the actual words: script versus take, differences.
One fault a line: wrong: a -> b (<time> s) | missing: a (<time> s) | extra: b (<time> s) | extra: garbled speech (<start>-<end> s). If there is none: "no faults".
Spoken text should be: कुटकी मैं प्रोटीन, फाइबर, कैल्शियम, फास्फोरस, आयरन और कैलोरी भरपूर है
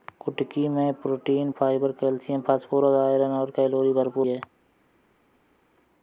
no faults